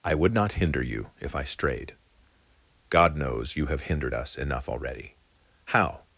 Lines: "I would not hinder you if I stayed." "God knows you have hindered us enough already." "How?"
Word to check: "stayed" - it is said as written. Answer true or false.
false